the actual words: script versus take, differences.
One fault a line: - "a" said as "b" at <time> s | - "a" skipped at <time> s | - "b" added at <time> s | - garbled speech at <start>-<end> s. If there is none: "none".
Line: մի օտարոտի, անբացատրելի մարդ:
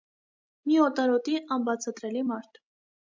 none